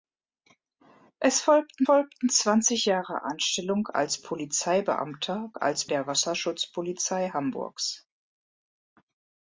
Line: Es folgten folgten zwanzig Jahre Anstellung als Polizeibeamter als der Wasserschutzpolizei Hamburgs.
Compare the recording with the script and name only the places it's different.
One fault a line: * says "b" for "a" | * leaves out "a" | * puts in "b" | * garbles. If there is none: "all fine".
all fine